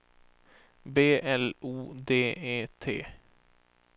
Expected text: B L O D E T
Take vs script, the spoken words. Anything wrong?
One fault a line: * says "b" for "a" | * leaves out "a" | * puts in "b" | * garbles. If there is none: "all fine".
all fine